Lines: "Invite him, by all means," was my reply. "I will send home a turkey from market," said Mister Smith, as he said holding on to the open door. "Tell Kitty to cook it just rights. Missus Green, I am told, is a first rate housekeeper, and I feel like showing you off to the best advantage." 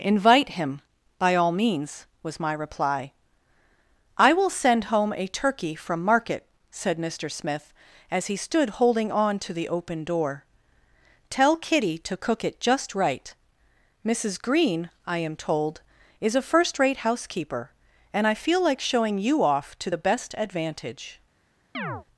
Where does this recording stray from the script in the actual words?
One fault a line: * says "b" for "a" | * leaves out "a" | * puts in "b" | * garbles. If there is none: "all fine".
* says "stood" for "said"
* says "right" for "rights"